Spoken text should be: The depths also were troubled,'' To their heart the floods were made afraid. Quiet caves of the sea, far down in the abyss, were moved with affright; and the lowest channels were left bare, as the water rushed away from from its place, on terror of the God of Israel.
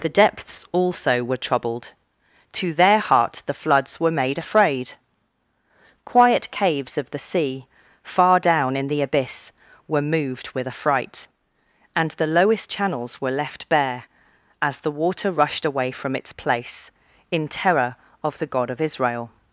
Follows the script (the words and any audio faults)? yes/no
no